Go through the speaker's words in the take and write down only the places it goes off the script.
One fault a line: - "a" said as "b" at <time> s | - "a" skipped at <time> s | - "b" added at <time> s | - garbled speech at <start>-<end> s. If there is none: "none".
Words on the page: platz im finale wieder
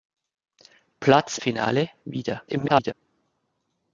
- "im" skipped at 1.4 s
- garbled speech at 2.5-2.9 s